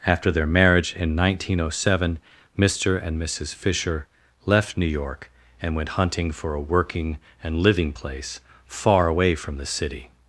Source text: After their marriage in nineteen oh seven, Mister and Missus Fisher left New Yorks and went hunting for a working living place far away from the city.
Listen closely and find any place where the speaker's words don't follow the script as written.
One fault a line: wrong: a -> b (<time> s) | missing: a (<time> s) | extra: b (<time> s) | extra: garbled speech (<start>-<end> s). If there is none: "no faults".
wrong: Yorks -> York (4.9 s)
extra: and (7.4 s)